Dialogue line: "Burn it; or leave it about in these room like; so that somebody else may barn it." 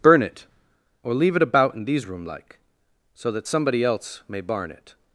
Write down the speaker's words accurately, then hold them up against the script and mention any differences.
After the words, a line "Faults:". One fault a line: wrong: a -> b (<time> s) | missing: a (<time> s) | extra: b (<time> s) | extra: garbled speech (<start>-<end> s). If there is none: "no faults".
"Burn it; or leave it about in these room like; so that somebody else may barn it."
Faults:
no faults